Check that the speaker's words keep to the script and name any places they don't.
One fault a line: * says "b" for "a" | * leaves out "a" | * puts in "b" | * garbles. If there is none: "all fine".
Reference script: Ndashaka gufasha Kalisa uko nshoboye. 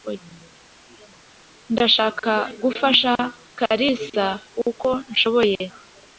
all fine